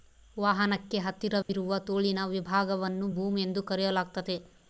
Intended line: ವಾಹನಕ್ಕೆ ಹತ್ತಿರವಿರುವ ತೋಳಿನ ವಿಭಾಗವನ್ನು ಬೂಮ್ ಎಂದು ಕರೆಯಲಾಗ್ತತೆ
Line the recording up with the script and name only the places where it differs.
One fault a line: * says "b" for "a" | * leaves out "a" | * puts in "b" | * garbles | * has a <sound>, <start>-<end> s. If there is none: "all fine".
* has a dropout, 1.4-1.5 s